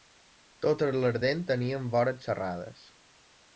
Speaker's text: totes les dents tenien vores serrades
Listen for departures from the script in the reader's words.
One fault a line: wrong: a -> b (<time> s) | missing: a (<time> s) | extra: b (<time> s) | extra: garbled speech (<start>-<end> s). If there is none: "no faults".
no faults